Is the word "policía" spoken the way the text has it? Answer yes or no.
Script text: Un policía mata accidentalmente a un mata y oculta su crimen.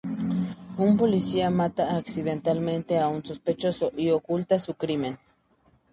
yes